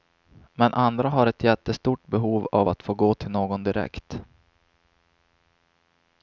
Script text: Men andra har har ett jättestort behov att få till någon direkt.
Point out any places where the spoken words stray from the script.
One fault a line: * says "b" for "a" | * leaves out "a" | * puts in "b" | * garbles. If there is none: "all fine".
* leaves out "har"
* puts in "av"
* puts in "gå"